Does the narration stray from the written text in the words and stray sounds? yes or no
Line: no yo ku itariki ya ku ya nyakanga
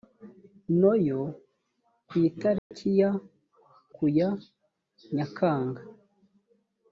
yes